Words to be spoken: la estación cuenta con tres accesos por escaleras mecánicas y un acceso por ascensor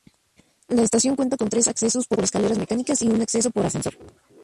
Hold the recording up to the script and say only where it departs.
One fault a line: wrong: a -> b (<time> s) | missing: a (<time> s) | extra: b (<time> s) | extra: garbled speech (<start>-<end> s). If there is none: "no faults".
extra: por (2.1 s)